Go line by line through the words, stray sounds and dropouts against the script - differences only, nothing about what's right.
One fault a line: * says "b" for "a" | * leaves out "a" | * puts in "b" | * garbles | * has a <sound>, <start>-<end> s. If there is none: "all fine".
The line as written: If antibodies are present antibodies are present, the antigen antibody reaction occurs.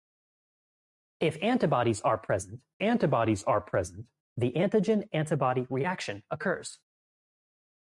all fine